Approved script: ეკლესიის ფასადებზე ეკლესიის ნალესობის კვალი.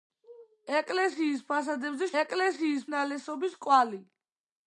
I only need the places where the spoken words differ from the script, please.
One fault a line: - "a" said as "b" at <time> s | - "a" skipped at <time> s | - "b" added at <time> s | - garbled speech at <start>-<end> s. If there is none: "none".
none